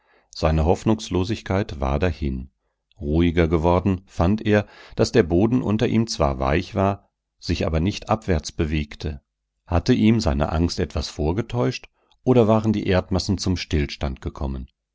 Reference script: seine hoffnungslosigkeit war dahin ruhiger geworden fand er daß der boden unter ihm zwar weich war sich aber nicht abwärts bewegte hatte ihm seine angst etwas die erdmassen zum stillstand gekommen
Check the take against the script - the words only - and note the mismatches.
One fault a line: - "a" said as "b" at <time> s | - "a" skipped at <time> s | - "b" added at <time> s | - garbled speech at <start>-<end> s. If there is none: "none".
- "vorgetäuscht oder waren" added at 11.1 s